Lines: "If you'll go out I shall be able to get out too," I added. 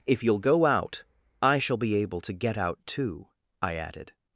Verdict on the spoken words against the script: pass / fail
pass